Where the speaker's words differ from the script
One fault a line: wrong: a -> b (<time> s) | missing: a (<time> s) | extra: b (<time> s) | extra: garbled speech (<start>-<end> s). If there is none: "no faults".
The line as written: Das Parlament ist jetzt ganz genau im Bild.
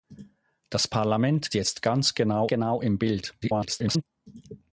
missing: ist (1.5 s)
extra: genau (2.5 s)
extra: garbled speech (3.4-4.0 s)